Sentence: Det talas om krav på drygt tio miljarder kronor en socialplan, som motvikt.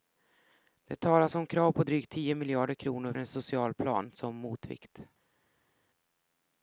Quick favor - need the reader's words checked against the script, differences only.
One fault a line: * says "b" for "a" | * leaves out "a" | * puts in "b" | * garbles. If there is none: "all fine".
all fine